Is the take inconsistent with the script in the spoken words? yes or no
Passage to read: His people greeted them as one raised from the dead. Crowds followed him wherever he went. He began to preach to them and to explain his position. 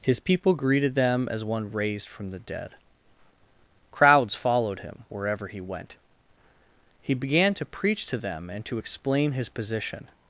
no